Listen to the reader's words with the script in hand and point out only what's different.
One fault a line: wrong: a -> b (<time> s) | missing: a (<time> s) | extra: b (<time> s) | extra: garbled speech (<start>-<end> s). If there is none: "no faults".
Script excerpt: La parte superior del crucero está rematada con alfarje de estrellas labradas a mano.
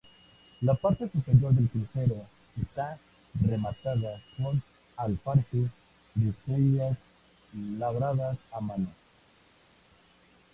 no faults